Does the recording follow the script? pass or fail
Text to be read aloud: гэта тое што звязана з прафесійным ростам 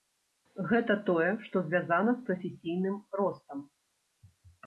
pass